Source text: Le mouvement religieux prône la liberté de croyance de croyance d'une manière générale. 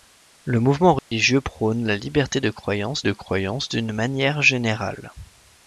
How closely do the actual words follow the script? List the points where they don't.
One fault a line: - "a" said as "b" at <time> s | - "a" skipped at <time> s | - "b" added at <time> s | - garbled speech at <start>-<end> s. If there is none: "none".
none